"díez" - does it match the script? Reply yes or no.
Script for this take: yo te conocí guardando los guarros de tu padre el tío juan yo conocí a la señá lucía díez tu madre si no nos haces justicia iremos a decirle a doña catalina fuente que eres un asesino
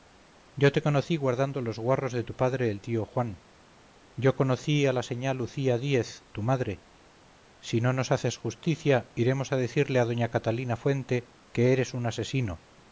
yes